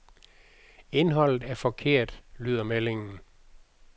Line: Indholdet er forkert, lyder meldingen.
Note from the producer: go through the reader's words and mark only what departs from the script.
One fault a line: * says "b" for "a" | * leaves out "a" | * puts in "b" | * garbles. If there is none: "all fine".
all fine